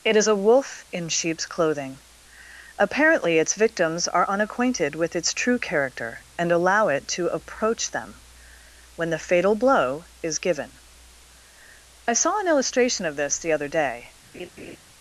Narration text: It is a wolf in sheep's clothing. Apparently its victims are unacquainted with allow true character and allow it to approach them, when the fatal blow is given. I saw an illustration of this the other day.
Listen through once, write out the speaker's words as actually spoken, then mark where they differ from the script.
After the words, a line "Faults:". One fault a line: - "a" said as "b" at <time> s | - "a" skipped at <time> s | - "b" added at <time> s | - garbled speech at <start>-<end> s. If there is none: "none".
It is a wolf in sheep's clothing. Apparently its victims are unacquainted with its true character and allow it to approach them, when the fatal blow is given. I saw an illustration of this the other day.
Faults:
- "allow" said as "its" at 5.2 s